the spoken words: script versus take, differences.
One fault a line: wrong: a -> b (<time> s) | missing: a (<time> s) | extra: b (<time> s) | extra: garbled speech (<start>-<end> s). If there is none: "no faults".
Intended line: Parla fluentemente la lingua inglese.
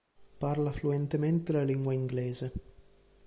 no faults